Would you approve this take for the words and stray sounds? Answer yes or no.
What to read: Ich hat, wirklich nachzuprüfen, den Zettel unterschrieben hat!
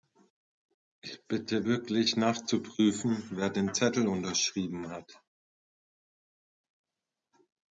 no